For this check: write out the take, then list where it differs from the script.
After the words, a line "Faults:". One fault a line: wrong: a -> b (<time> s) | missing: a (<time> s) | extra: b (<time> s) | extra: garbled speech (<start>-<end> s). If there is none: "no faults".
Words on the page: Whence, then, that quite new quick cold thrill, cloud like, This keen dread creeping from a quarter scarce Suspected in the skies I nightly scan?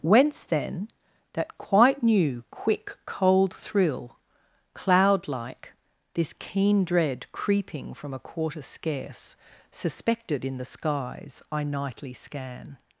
Whence, then, that quite new quick cold thrill, cloud like, This keen dread creeping from a quarter scarce Suspected in the skies I nightly scan?
Faults:
no faults